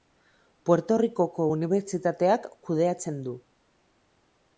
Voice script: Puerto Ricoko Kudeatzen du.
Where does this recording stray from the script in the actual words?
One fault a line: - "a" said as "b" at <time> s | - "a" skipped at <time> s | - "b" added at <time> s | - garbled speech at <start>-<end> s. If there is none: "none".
- "Unibertsitateak" added at 1.6 s